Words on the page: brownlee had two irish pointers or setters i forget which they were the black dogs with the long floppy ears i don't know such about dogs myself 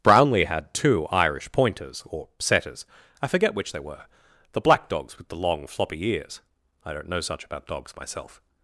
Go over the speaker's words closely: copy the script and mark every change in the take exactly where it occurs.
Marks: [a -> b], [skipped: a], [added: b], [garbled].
brownlee had two irish pointers or setters i forget which they were the black dogs with the long floppy ears i don't know such about dogs myself